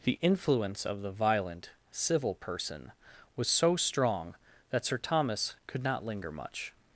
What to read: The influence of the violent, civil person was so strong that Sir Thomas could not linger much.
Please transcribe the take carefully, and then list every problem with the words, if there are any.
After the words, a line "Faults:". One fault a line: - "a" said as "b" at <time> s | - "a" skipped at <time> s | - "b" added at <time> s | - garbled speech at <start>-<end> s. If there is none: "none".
The influence of the violent, civil person was so strong that Sir Thomas could not linger much.
Faults:
none